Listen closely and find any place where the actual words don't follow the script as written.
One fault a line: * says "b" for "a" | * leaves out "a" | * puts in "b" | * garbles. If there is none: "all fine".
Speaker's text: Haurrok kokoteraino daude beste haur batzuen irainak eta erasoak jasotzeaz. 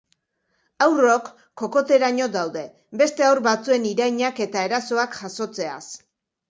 all fine